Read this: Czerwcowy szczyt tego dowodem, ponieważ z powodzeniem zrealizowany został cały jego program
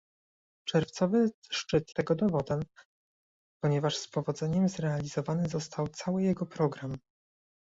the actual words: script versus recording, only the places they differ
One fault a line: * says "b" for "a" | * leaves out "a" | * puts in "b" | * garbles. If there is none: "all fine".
all fine